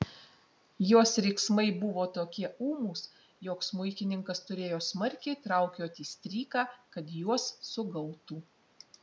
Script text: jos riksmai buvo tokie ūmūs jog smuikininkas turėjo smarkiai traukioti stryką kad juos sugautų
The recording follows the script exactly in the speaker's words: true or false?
true